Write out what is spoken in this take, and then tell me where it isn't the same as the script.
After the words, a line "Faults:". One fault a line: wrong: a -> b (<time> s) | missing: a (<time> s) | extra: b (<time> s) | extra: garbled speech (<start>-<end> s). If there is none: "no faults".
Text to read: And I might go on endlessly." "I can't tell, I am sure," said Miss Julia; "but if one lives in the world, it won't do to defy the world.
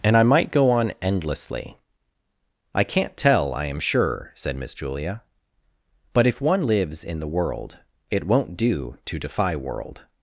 And I might go on endlessly." "I can't tell, I am sure," said Miss Julia; "but if one lives in the world, it won't do to defy world.
Faults:
missing: the (9.6 s)